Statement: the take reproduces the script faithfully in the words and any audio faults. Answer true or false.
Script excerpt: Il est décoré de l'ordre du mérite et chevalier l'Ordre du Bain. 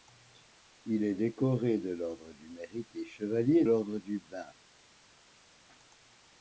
true